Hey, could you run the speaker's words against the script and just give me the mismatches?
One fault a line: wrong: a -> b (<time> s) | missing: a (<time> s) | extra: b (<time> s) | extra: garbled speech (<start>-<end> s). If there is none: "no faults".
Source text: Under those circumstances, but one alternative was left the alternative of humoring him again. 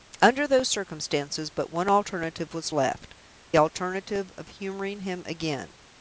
missing: the (3.1 s)